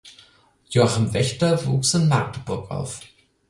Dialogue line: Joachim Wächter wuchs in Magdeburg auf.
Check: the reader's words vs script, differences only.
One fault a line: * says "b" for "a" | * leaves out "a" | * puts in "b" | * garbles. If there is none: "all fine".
all fine